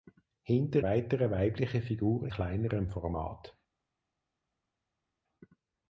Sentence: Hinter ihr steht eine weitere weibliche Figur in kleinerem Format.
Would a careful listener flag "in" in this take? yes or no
yes